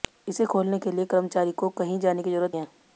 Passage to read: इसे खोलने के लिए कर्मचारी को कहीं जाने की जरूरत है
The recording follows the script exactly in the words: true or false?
true